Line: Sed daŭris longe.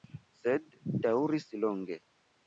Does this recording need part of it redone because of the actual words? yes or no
no